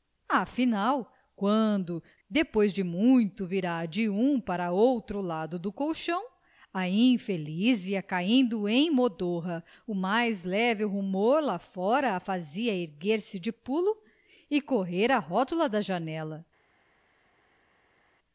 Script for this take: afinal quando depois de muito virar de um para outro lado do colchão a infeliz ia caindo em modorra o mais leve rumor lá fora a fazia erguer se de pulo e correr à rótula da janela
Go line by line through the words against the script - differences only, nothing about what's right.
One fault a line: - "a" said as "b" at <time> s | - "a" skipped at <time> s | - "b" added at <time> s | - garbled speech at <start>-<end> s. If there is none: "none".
none